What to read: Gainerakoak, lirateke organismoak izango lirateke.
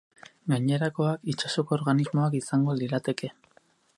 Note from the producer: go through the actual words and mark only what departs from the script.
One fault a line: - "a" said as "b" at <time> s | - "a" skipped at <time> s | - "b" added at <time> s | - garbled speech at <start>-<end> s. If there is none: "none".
- "lirateke" said as "itsasoko" at 1.3 s